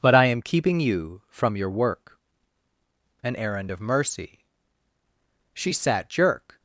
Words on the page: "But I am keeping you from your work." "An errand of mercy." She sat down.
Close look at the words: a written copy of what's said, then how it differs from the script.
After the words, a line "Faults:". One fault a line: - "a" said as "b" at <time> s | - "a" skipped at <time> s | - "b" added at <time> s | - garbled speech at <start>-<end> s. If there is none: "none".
"But I am keeping you from your work." "An errand of mercy." She sat jerk.
Faults:
- "down" said as "jerk" at 6.1 s